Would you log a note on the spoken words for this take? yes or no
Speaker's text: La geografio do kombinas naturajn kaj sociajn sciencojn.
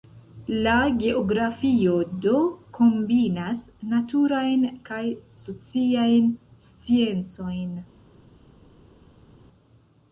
no